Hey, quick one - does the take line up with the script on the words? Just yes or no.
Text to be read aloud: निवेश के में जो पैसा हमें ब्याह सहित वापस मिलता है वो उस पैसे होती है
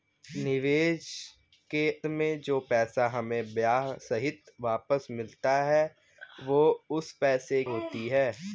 yes